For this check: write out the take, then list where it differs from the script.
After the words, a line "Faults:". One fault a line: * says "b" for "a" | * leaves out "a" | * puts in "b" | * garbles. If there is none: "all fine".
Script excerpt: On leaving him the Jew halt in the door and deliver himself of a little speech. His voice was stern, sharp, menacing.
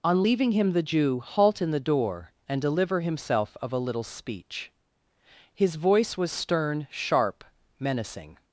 On leaving him the Jew halt in the door and deliver himself of a little speech. His voice was stern, sharp, menacing.
Faults:
all fine